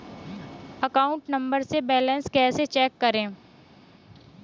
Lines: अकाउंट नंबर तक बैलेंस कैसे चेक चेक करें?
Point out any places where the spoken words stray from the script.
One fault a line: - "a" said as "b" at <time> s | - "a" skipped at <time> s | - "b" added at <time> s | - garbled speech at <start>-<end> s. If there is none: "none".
- "तक" said as "से" at 1.6 s
- "चेक" skipped at 3.0 s